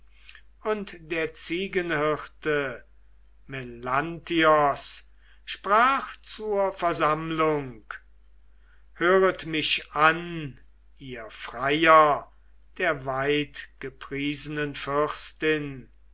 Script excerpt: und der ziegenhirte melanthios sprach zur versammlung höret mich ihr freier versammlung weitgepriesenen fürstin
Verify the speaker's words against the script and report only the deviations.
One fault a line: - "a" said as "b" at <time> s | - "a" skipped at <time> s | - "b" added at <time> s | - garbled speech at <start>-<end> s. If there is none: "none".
- "an" added at 9.9 s
- "versammlung" said as "der" at 12.8 s